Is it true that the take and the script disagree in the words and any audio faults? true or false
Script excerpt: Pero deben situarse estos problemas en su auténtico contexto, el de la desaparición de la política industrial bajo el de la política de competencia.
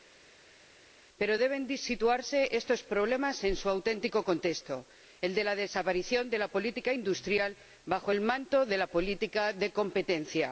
true